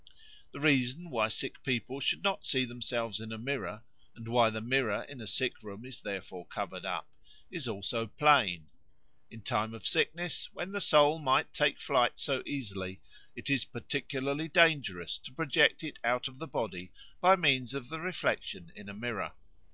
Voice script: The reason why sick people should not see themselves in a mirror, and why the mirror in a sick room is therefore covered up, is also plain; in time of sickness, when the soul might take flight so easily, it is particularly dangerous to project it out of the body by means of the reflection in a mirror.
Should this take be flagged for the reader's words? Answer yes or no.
no